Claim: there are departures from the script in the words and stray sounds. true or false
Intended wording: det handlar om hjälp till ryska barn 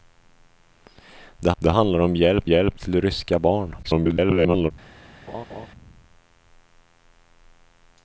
true